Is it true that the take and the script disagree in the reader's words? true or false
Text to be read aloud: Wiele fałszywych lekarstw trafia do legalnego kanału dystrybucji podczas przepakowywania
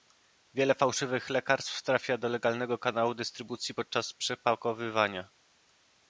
false